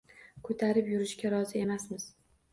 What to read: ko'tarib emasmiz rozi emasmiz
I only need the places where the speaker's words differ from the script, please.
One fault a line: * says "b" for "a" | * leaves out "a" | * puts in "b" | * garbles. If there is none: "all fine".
* says "yurishga" for "emasmiz"